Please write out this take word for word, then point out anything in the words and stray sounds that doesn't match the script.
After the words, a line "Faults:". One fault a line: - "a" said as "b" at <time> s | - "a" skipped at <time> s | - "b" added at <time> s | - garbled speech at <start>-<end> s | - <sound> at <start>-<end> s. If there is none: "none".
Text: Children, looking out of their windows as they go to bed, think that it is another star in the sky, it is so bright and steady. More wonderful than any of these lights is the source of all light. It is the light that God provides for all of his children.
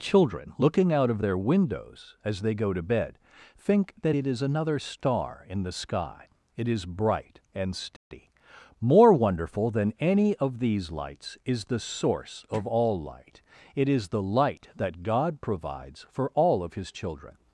Children, looking out of their windows as they go to bed, think that it is another star in the sky, it is bright and steady. More wonderful than any of these lights is the source of all light. It is the light that God provides for all of his children.
Faults:
- "so" skipped at 6.8 s
- dropout at 8.0-8.1 s